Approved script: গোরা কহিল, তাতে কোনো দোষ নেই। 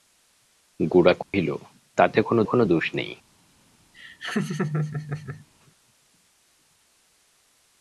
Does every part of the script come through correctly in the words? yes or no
no